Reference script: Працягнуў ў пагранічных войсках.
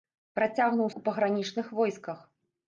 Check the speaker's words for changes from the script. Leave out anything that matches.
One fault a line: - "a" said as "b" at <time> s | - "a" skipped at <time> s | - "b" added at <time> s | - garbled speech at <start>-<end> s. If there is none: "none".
none